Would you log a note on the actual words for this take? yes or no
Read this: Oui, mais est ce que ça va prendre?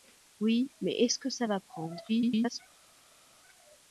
yes